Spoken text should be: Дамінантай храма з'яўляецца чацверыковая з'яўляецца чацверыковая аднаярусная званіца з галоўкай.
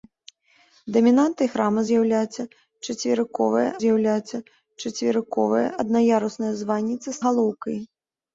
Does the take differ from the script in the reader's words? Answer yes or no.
no